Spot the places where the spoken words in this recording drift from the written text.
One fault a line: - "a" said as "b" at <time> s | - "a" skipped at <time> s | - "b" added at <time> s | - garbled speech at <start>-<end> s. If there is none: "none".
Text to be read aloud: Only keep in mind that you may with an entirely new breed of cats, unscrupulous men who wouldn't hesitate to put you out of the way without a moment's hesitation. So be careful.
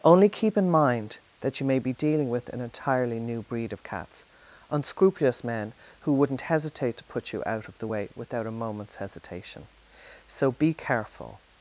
- "be dealing" added at 1.8 s